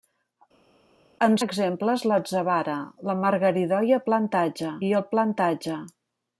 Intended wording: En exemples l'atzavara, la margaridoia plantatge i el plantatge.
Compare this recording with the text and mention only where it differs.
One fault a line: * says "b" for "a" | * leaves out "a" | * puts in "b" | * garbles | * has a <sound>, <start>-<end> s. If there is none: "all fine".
all fine